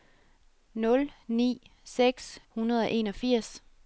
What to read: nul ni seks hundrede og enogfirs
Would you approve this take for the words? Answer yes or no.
yes